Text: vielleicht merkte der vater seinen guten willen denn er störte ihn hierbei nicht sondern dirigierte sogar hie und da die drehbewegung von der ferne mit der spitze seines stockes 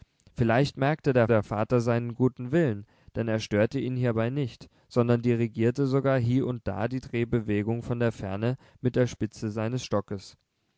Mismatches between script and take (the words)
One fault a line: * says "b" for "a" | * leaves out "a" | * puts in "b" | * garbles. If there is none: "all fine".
* puts in "der"